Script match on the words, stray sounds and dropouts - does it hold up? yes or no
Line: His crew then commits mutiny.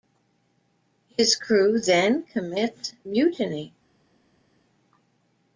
yes